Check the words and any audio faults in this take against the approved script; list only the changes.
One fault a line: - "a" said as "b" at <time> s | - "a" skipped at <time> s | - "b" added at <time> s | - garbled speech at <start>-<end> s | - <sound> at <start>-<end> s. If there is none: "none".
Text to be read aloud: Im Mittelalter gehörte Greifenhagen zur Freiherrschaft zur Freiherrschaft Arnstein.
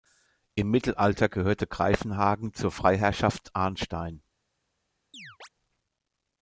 - "zur Freiherrschaft" skipped at 3.5 s
- chirp at 5.1-5.5 s